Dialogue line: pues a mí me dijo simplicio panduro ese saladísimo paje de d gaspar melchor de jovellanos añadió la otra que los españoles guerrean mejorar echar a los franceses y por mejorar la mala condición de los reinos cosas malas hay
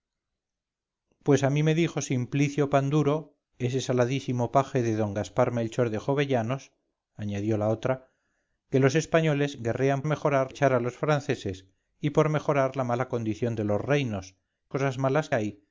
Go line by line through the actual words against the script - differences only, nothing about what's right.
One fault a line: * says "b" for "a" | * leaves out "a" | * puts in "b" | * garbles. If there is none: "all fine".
all fine